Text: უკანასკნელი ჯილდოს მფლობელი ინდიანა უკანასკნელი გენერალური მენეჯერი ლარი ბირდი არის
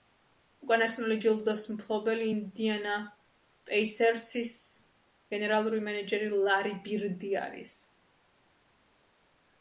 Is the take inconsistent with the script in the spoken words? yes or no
yes